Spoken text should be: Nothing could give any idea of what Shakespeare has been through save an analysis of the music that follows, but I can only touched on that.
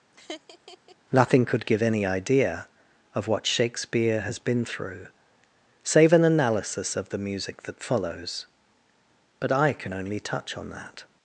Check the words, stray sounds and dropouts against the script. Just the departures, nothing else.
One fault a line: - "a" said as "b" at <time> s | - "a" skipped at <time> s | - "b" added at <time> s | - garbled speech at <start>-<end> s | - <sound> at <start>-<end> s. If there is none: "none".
- laugh at 0.1-1.0 s
- "touched" said as "touch" at 10.2 s